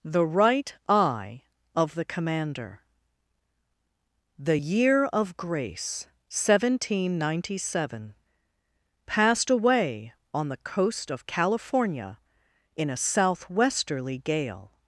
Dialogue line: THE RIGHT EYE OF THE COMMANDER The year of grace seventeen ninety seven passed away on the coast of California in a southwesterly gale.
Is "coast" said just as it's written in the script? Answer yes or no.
yes